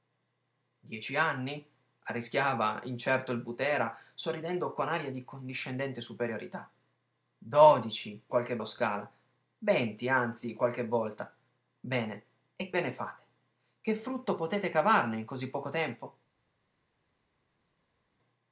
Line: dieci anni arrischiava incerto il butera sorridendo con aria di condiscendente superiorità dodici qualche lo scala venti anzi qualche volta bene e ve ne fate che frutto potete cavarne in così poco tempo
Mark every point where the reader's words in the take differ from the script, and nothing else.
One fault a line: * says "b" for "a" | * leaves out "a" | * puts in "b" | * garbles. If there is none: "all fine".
all fine